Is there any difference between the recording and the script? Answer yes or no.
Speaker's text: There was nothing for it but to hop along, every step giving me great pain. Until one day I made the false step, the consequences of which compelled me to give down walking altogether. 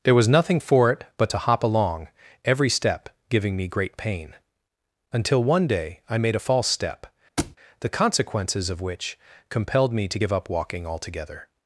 yes